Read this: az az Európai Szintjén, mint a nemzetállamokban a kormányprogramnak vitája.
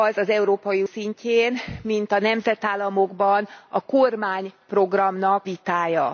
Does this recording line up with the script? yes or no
yes